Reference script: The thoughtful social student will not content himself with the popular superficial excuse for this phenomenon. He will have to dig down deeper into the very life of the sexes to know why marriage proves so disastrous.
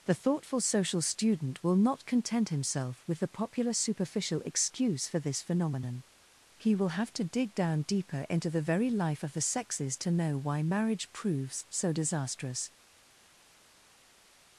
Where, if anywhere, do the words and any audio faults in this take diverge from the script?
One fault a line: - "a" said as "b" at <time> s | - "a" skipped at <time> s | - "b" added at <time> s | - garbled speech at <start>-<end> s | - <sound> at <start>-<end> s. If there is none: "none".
none